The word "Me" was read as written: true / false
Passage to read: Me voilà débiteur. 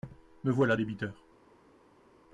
true